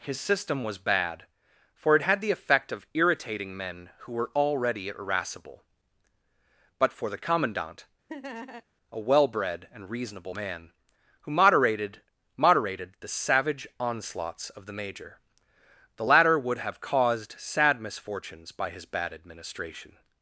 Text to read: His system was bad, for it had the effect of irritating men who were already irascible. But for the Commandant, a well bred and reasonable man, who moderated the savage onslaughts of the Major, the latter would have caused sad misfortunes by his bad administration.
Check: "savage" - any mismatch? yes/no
no